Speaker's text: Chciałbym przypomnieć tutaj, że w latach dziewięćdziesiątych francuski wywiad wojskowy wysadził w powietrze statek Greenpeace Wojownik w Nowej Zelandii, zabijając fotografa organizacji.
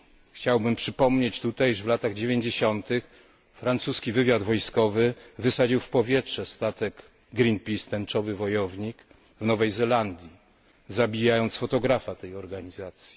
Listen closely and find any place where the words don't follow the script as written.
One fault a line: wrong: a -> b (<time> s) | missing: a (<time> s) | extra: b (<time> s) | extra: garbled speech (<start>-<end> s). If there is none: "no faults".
extra: Tęczowy (7.9 s)
extra: tej (12.1 s)